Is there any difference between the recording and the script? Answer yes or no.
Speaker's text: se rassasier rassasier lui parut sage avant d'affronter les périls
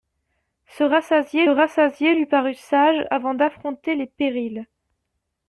no